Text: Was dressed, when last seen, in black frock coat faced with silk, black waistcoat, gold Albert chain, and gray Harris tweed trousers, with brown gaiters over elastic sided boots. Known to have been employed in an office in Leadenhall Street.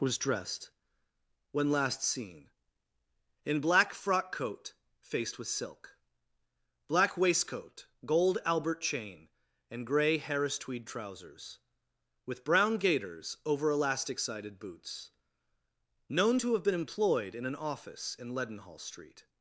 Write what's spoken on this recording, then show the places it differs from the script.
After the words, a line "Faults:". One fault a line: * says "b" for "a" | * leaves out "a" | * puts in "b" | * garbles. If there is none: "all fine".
Was dressed, when last seen, in black frock coat faced with silk, black waistcoat, gold Albert chain, and gray Harris tweed trousers, with brown gaiters over elastic sided boots. Known to have been employed in an office in Leadenhall Street.
Faults:
all fine